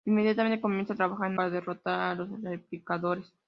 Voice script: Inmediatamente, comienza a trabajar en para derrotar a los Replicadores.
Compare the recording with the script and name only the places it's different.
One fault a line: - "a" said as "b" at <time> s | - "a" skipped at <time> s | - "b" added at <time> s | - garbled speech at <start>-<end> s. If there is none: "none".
none